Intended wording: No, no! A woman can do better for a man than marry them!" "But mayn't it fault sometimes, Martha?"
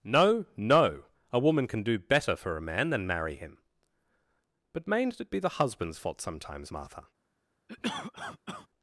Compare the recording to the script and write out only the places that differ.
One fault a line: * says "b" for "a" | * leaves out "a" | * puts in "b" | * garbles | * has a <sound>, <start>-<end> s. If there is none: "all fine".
* says "him" for "them"
* puts in "be the husband's"
* has a cough, 7.7-8.7 s